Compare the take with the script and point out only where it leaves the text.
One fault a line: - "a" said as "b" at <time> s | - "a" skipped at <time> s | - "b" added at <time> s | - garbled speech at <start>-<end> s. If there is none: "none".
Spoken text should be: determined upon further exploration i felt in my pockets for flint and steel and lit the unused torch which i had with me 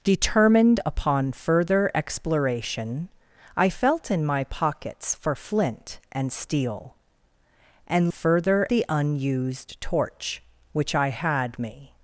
- "lit" said as "further" at 8.1 s
- "with" skipped at 11.6 s